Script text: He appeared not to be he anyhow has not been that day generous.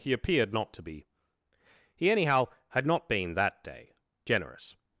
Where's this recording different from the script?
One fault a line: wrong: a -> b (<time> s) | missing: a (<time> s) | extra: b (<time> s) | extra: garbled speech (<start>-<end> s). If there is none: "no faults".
wrong: has -> had (2.7 s)